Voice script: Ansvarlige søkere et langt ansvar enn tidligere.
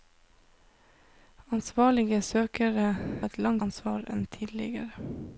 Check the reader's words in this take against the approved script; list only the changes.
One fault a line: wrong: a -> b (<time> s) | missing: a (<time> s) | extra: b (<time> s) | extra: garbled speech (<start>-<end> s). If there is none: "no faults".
no faults